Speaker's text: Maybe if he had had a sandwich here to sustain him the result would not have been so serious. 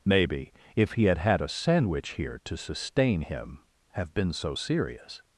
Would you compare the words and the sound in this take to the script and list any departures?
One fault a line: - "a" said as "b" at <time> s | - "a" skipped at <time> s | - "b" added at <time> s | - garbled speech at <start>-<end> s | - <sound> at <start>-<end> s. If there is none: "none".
- "the result would not" skipped at 3.6 s